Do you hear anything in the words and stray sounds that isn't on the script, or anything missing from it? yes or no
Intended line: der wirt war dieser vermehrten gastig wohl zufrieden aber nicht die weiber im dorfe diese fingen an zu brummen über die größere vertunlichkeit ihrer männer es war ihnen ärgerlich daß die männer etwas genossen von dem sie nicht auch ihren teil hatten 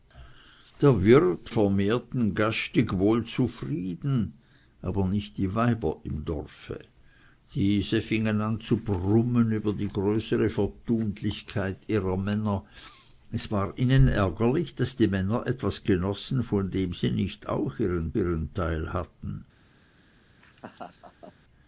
yes